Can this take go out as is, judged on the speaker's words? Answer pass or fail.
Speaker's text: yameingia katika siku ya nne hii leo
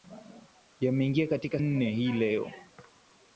fail